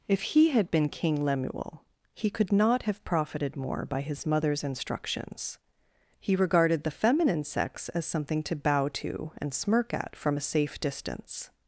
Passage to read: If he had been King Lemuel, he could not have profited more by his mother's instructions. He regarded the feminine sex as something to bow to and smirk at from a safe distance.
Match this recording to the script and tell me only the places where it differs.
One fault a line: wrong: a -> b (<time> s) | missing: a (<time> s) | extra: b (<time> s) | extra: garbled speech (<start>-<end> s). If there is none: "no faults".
no faults